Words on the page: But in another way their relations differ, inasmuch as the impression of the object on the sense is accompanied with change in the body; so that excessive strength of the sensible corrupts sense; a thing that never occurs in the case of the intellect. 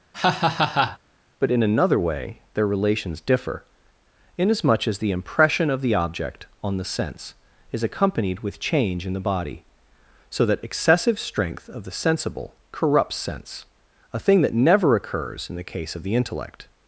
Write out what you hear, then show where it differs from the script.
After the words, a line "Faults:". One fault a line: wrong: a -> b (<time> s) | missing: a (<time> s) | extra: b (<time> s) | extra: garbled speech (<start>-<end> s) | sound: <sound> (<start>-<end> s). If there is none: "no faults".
But in another way their relations differ, inasmuch as the impression of the object on the sense is accompanied with change in the body; so that excessive strength of the sensible corrupts sense; a thing that never occurs in the case of the intellect.
Faults:
sound: laugh (0.1-1.0 s)